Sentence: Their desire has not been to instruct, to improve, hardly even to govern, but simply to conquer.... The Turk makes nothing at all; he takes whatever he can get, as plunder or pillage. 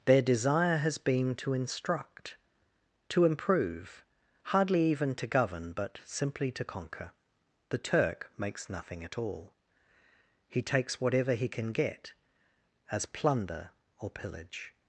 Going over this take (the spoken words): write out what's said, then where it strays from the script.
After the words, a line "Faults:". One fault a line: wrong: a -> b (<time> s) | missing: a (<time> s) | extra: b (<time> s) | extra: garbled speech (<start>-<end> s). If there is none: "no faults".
Their desire has been to instruct, to improve, hardly even to govern, but simply to conquer.... The Turk makes nothing at all; he takes whatever he can get, as plunder or pillage.
Faults:
missing: not (1.0 s)